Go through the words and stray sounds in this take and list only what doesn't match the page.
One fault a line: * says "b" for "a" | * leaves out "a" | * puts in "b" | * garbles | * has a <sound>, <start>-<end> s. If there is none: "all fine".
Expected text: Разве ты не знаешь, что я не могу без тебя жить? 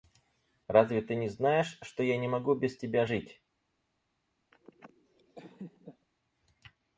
* has a laugh, 4.5-6.1 s